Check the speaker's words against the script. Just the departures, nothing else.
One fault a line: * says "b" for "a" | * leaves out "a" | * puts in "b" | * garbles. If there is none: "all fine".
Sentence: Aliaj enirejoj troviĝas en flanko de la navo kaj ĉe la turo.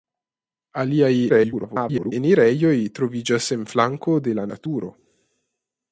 * garbles
* leaves out "navo kaj ĉe"